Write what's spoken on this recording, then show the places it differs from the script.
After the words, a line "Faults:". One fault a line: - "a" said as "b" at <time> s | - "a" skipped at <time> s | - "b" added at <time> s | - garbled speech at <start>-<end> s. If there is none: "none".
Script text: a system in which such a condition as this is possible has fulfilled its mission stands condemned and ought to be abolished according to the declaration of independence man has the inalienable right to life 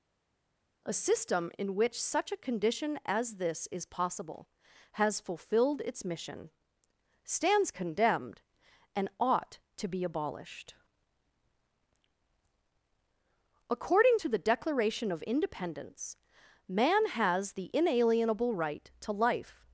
a system in which such a condition as this is possible has fulfilled its mission stands condemned and ought to be abolished according to the declaration of independence man has the inalienable right to life
Faults:
none